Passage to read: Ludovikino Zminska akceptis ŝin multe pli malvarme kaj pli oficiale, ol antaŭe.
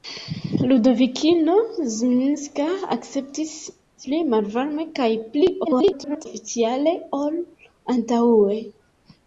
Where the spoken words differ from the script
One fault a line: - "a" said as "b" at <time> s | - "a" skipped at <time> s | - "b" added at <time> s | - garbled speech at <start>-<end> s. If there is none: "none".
- "ŝin multe" skipped at 3.5 s
- garbled speech at 5.7-6.3 s